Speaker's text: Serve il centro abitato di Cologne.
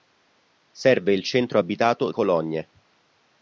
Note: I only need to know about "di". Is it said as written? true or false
false